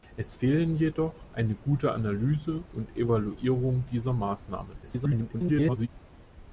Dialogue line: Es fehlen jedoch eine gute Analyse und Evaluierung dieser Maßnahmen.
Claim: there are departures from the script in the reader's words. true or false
true